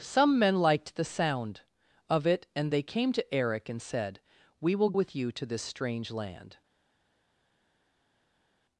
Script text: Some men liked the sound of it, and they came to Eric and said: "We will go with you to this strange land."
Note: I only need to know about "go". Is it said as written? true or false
false